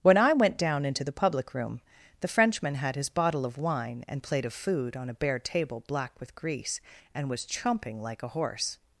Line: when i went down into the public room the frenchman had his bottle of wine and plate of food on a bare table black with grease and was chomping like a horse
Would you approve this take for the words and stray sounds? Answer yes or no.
yes